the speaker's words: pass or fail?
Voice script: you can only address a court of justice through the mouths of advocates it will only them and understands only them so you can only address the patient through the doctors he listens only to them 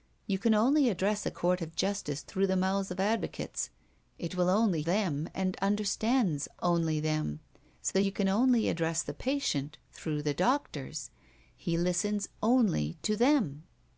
pass